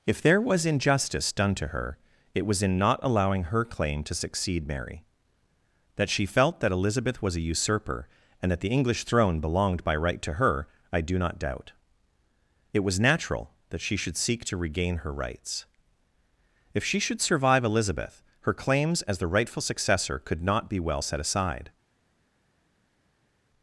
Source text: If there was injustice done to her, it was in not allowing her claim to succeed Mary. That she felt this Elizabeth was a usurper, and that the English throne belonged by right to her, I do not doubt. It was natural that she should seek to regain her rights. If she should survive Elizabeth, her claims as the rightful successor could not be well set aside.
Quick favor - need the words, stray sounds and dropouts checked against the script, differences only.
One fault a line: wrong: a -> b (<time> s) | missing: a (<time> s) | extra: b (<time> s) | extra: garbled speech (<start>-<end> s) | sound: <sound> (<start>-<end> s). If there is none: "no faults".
wrong: this -> that (6.6 s)